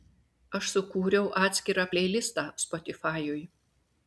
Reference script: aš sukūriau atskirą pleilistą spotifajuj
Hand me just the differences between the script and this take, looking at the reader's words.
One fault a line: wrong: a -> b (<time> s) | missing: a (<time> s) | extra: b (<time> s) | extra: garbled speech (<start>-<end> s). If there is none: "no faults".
no faults